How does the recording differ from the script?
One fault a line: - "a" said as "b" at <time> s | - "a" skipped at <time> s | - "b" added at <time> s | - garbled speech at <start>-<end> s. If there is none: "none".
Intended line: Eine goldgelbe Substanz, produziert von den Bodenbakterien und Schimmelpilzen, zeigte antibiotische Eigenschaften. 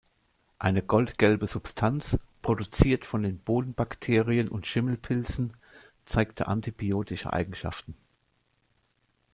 none